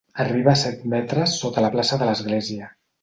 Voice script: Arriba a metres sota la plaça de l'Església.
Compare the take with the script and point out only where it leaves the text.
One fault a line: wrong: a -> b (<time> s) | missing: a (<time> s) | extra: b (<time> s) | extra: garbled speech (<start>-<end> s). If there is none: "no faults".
extra: set (0.6 s)